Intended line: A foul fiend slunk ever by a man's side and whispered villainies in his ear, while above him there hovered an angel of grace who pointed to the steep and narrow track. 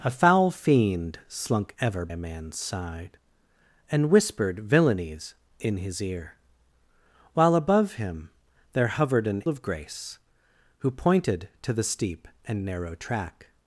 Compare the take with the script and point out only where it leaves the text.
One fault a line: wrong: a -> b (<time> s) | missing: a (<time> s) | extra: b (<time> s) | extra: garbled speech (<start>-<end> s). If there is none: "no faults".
missing: by (2.1 s)
missing: angel (9.4 s)